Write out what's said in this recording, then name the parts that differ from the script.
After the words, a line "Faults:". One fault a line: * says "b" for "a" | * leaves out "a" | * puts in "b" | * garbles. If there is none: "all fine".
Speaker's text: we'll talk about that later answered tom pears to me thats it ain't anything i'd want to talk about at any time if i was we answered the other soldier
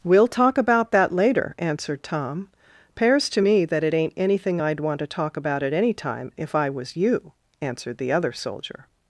we'll talk about that later answered tom pears to me that it ain't anything i'd want to talk about at any time if i was you answered the other soldier
Faults:
* says "that" for "thats"
* says "you" for "we"